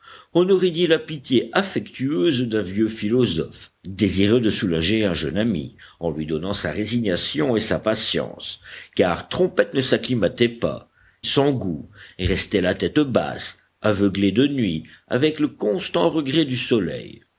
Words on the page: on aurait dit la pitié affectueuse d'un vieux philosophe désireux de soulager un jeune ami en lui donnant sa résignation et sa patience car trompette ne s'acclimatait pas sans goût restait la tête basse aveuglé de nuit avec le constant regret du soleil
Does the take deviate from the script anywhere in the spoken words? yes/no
no